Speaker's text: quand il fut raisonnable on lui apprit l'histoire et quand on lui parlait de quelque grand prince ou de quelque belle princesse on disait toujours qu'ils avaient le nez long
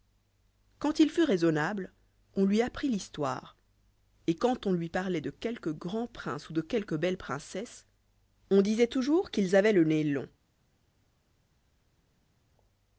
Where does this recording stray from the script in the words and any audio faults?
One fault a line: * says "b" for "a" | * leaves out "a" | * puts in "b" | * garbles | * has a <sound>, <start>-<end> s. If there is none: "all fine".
all fine